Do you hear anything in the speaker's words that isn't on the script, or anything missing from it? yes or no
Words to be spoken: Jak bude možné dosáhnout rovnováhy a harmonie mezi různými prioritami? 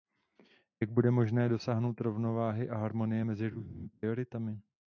no